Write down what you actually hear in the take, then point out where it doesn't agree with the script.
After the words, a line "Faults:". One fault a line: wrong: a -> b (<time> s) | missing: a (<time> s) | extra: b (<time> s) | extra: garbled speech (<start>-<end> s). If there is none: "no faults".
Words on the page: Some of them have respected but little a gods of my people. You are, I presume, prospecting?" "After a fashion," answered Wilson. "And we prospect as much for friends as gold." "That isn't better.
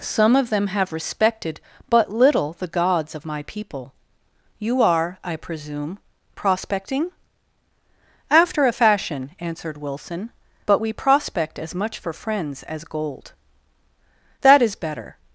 Some of them have respected but little the gods of my people. You are, I presume, prospecting?" "After a fashion," answered Wilson. "But we prospect as much for friends as gold." "That is better.
Faults:
wrong: a -> the (2.5 s)
wrong: And -> But (10.7 s)
wrong: isn't -> is (14.6 s)